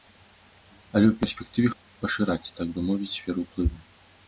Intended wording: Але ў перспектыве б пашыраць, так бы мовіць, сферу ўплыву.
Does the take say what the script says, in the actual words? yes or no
yes